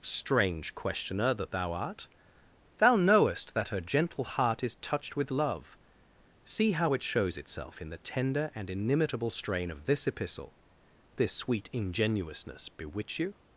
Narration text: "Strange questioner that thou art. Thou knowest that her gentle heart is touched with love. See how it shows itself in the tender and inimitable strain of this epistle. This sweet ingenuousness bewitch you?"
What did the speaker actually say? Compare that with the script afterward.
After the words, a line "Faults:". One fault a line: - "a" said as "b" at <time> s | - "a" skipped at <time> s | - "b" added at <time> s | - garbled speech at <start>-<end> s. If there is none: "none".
"Strange questioner that thou art. Thou knowest that her gentle heart is touched with love. See how it shows itself in the tender and inimitable strain of this epistle. This sweet ingenuousness bewitch you?"
Faults:
none